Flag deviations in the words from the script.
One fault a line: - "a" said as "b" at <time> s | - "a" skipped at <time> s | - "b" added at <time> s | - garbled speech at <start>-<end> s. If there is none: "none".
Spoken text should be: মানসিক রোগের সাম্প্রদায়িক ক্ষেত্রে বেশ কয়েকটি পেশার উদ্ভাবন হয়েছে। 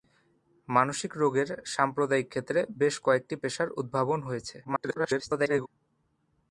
- garbled speech at 4.6-5.7 s